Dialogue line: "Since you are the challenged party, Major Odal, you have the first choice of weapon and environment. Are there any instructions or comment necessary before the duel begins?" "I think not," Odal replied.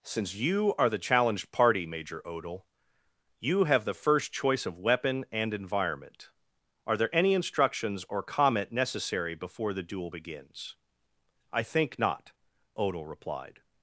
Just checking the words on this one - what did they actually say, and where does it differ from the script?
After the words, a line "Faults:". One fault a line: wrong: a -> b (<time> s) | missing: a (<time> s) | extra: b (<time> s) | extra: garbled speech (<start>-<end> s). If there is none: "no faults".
"Since you are the challenged party, Major Odal, you have the first choice of weapon and environment. Are there any instructions or comment necessary before the duel begins?" "I think not," Odal replied.
Faults:
no faults